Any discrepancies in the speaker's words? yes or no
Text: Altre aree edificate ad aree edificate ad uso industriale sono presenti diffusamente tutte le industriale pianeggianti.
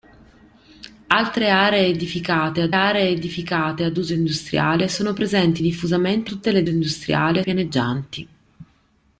no